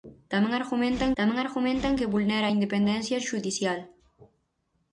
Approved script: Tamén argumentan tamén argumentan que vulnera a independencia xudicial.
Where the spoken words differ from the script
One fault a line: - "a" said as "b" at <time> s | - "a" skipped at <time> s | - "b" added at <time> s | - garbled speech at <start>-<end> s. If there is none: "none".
none